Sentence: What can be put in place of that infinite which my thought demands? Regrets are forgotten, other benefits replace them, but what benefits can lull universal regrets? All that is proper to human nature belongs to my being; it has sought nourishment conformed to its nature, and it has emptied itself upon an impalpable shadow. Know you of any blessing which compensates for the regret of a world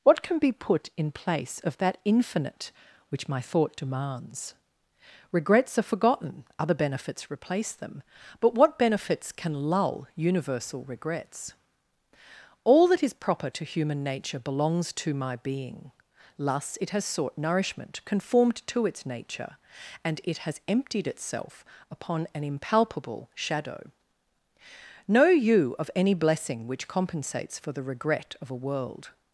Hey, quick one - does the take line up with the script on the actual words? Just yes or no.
no